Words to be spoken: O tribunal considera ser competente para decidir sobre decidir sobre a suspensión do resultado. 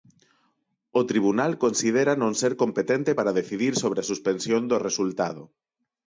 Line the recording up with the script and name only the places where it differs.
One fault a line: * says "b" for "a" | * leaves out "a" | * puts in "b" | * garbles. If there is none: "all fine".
* puts in "non"
* leaves out "decidir sobre"